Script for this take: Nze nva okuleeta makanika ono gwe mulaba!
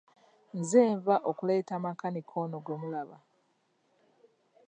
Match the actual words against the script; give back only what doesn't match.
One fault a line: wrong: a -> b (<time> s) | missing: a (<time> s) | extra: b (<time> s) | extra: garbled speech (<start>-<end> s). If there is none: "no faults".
no faults